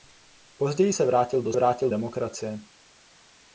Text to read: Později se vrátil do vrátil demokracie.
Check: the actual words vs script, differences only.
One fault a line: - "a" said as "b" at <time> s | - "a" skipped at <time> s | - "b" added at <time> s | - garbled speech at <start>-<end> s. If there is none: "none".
none